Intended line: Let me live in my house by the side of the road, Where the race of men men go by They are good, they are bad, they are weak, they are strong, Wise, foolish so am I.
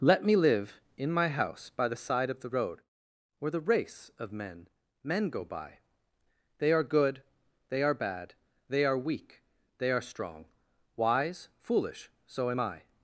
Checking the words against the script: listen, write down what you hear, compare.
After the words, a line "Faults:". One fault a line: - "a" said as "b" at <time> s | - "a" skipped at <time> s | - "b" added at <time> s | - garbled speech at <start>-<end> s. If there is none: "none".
Let me live in my house by the side of the road, Where the race of men men go by They are good, they are bad, they are weak, they are strong, Wise, foolish so am I.
Faults:
none